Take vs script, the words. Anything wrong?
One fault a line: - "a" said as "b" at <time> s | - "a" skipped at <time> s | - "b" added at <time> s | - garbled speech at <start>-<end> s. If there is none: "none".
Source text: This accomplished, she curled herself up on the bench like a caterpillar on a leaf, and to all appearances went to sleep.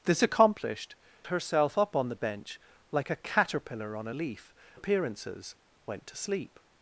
- "she curled" skipped at 0.9 s
- "and to all" skipped at 4.5 s